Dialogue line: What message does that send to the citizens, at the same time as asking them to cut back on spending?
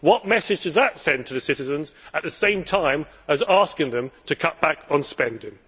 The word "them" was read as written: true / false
true